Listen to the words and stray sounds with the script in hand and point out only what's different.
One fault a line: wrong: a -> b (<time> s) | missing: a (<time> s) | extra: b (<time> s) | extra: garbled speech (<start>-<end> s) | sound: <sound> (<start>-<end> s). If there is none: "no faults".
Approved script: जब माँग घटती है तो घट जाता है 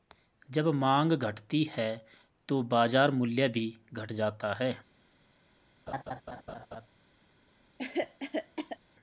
extra: बाजार मूल्य भी (2.6 s)
sound: laugh (5.9-6.9 s)
sound: cough (7.8-8.8 s)